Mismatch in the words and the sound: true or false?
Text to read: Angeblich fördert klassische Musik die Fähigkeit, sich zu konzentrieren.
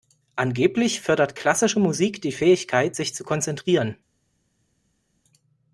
false